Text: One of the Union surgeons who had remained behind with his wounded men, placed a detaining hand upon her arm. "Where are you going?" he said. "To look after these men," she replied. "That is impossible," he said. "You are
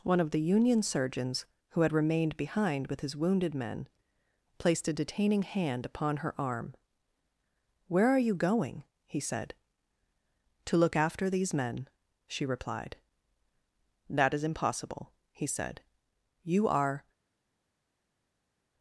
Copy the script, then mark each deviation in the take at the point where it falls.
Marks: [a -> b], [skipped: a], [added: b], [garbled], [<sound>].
One of the Union surgeons who had remained behind with his wounded men, placed a detaining hand upon her arm. "Where are you going?" he said. "To look after these men," she replied. "That is impossible," he said. "You are